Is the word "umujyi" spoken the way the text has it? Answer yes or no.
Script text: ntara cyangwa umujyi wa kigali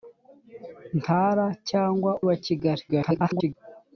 no